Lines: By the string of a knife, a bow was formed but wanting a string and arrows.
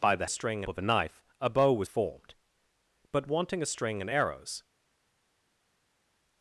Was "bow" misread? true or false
false